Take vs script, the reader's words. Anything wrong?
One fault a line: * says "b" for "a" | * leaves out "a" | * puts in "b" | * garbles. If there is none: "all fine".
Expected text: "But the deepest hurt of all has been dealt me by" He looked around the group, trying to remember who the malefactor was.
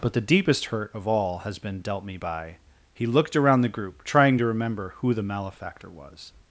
all fine